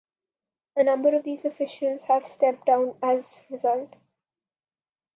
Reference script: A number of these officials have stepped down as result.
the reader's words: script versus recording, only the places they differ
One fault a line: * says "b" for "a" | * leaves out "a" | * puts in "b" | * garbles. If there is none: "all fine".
all fine